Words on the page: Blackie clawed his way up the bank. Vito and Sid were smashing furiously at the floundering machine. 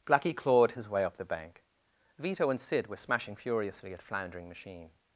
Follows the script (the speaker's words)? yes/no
no